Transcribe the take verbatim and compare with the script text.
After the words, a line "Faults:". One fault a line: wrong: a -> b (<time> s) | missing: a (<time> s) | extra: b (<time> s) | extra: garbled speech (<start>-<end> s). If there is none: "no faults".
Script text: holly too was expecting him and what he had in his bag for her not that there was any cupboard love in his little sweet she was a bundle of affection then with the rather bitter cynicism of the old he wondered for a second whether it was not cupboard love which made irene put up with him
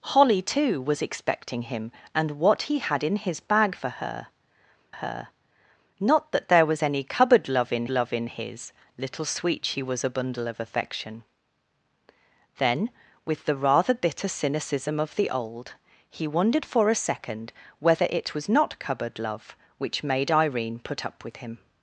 holly too was expecting him and what he had in his bag for her her not that there was any cupboard love in love in his little sweet she was a bundle of affection then with the rather bitter cynicism of the old he wondered for a second whether it was not cupboard love which made irene put up with him
Faults:
extra: her (4.9 s)
extra: love in (7.9 s)